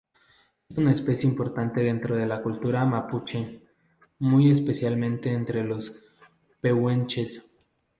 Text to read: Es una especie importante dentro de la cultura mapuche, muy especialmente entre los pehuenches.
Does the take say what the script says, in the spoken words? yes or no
yes